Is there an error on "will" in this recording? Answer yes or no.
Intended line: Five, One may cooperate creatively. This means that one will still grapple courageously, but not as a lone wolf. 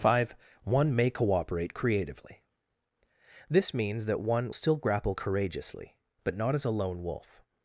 yes